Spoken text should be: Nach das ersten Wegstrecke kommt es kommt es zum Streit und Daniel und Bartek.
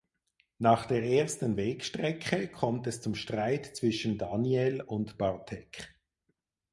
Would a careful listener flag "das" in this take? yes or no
yes